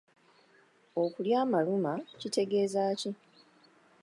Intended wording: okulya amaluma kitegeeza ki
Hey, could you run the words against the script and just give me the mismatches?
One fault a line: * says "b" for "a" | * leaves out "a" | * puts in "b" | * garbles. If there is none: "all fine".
all fine